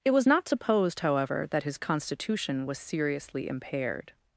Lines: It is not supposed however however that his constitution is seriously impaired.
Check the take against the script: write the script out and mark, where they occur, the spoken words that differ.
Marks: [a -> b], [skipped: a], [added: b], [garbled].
It [is -> was] not supposed however [skipped: however] that his constitution [is -> was] seriously impaired.